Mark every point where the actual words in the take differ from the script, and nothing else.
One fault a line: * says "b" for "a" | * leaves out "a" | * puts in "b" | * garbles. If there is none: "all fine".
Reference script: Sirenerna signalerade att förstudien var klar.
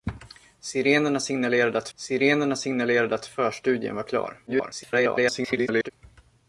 * puts in "sirenerna signalerade att"
* garbles